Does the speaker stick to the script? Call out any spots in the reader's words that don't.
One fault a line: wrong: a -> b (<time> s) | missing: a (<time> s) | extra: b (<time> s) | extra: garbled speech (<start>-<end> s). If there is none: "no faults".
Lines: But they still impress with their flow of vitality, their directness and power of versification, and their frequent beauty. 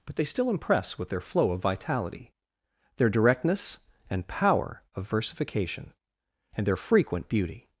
no faults